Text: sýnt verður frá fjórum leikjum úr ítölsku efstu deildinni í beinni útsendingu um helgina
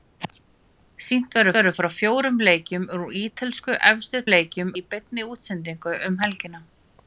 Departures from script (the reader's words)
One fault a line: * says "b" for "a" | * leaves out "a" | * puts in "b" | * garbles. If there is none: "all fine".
* puts in "verður"
* says "leikjum" for "deildinni"